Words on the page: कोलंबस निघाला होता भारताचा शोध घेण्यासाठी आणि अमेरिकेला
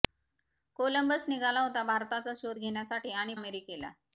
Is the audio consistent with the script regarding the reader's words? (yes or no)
yes